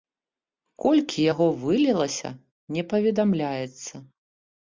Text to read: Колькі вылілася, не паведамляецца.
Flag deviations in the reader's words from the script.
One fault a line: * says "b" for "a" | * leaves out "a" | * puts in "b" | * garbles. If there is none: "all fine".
* puts in "яго"